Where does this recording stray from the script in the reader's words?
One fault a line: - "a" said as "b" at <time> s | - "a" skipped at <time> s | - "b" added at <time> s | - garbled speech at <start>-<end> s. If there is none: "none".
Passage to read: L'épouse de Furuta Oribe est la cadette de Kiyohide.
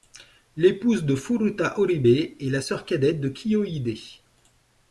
- "sœur" added at 2.6 s